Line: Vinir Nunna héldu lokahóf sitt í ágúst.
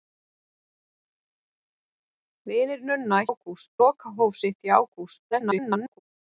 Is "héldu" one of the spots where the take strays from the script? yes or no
yes